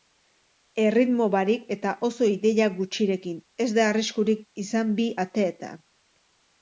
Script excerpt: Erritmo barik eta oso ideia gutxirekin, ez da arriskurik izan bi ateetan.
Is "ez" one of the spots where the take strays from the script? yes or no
no